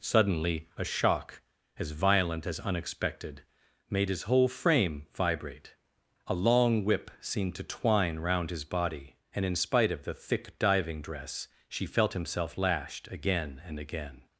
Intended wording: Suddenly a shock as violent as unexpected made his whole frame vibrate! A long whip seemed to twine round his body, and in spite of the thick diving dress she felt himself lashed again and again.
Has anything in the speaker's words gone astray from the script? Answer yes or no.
no